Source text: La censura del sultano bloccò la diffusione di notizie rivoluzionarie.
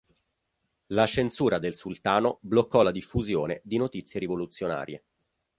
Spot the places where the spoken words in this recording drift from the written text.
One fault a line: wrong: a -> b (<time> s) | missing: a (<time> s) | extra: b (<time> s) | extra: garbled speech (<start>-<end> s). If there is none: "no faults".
no faults